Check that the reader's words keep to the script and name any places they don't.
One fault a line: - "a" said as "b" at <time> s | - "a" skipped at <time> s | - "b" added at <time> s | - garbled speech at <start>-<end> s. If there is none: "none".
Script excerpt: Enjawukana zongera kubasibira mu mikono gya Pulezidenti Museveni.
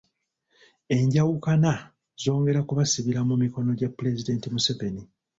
none